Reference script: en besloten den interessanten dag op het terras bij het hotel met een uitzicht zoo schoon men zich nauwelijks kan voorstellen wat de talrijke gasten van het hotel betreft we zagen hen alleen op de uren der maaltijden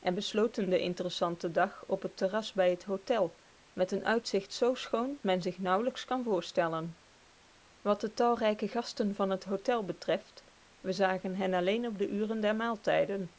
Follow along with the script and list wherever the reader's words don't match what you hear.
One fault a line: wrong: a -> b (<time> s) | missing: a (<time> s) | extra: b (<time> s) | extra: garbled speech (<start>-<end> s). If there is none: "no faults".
no faults